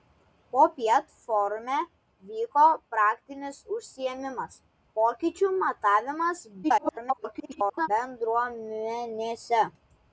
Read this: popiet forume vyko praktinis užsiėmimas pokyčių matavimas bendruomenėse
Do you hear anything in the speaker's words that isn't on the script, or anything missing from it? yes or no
yes